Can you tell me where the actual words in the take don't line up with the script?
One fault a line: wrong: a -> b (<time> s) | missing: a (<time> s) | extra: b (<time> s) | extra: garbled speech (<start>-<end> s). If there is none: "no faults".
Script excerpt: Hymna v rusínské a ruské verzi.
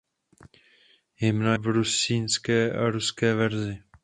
no faults